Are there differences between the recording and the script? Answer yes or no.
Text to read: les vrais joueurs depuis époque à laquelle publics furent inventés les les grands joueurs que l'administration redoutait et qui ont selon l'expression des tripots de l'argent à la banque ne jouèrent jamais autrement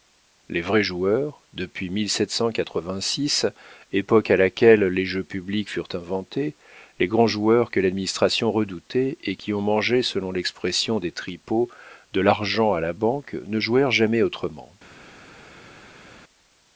yes